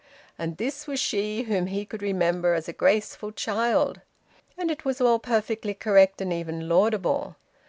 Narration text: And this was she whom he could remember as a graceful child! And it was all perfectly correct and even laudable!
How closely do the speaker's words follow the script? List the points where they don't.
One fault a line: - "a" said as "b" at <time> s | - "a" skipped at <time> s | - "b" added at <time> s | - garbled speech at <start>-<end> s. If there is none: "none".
none